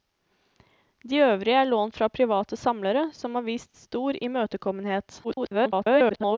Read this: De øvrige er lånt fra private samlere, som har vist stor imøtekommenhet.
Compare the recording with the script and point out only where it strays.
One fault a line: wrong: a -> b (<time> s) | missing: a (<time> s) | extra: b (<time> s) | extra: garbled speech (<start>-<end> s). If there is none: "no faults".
extra: garbled speech (5.2-6.4 s)